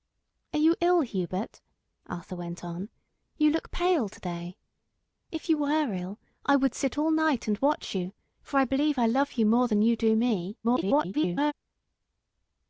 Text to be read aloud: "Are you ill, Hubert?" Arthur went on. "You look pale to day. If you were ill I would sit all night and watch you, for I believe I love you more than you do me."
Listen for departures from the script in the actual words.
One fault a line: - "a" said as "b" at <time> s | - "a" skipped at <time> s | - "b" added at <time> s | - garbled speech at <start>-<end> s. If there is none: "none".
- garbled speech at 10.6-11.5 s